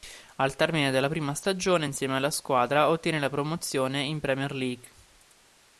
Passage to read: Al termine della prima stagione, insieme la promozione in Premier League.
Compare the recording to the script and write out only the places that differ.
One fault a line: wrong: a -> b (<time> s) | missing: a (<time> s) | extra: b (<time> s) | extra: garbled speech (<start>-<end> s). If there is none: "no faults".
extra: alla squadra ottiene (2.2 s)